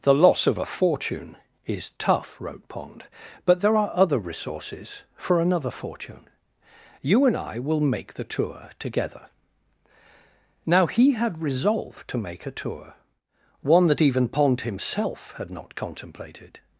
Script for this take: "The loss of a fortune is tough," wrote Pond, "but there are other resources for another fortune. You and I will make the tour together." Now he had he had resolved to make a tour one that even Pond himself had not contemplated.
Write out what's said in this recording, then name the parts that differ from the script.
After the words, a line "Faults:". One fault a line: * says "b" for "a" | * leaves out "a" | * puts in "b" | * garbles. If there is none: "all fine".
"The loss of a fortune is tough," wrote Pond, "but there are other resources for another fortune. You and I will make the tour together." Now he had resolved to make a tour one that even Pond himself had not contemplated.
Faults:
* leaves out "he had"